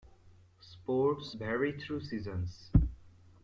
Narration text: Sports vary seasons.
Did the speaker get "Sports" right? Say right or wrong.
right